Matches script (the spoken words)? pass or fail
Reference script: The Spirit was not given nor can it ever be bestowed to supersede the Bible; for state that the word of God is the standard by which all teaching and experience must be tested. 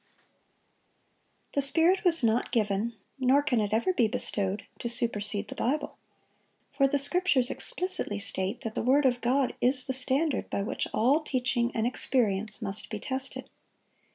fail